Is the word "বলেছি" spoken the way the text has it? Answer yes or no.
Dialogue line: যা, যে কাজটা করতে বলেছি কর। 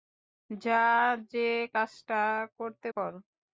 no